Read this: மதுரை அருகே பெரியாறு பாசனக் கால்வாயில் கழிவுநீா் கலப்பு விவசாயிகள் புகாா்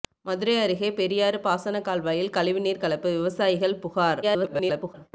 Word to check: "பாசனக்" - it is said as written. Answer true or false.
true